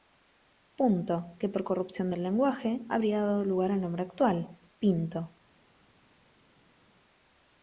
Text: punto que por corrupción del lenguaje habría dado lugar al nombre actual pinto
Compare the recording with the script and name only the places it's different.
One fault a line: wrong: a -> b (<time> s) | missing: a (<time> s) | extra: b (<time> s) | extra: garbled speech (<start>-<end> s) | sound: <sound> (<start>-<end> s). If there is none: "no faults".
no faults